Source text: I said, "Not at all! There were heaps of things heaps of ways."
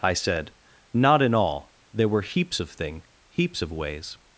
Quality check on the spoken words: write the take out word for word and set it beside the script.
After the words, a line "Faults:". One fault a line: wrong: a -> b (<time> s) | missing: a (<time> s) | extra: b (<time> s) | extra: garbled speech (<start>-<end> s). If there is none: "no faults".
I said, "Not in all! There were heaps of thing heaps of ways."
Faults:
wrong: at -> in (1.2 s)
wrong: things -> thing (2.7 s)